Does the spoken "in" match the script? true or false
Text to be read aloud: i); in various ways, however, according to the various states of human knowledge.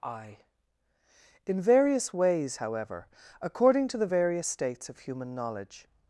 true